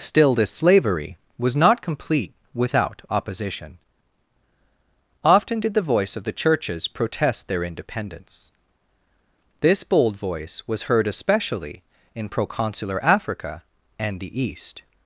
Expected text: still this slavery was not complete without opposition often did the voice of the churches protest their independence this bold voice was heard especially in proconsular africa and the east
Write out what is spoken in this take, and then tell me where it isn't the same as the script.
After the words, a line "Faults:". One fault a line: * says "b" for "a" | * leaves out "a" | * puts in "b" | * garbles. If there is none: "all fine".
still this slavery was not complete without opposition often did the voice of the churches protest their independence this bold voice was heard especially in proconsular africa and the east
Faults:
all fine